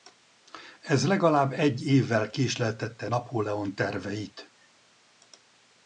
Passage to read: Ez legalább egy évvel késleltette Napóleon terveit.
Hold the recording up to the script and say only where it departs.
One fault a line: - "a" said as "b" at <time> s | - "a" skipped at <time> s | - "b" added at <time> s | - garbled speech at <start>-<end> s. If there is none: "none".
none